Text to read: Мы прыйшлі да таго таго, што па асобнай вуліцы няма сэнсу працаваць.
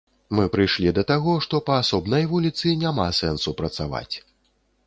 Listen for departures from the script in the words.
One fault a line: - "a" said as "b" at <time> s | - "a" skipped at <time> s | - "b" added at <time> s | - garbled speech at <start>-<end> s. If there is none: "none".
- "таго" skipped at 1.3 s